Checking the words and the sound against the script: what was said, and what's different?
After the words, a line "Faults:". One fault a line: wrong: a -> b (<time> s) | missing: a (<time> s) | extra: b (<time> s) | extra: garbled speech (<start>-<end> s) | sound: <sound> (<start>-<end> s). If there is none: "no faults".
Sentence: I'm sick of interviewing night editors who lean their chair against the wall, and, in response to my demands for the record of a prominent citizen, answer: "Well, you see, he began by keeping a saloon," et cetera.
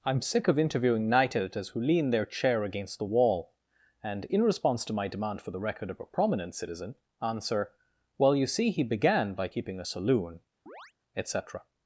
I'm sick of interviewing night editors who lean their chair against the wall, and, in response to my demand for the record of a prominent citizen, answer: "Well, you see, he began by keeping a saloon," et cetera.
Faults:
wrong: demands -> demand (5.1 s)
sound: chirp (10.7-10.9 s)